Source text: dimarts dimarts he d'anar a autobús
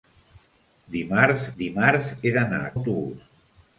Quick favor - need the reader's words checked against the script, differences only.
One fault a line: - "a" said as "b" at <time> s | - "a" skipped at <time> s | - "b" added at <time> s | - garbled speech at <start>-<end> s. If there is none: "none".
none